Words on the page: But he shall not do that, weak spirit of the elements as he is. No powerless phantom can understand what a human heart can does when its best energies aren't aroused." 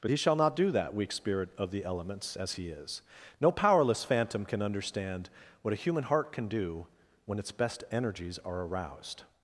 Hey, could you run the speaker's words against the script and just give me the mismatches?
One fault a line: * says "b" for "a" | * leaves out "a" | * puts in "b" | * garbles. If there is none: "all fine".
* says "do" for "does"
* says "are" for "aren't"